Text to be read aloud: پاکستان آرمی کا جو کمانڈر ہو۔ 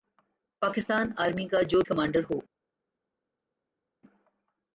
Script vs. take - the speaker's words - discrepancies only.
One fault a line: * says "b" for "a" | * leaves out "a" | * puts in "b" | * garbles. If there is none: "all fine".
all fine